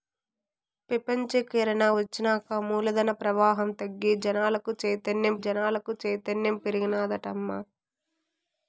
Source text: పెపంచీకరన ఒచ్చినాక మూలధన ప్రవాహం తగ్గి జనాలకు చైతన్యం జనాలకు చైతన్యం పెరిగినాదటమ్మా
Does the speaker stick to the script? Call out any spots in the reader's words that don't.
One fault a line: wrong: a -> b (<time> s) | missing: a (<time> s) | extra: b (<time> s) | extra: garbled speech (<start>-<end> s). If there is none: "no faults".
no faults